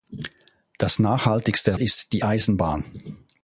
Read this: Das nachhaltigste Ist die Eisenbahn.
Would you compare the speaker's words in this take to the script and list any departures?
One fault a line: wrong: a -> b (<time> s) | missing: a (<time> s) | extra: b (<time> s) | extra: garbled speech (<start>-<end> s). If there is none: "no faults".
no faults